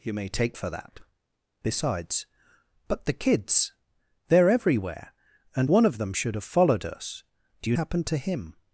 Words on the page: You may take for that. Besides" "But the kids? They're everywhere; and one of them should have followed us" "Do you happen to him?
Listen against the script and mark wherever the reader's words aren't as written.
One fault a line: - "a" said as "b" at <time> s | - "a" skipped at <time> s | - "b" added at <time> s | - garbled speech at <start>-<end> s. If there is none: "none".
none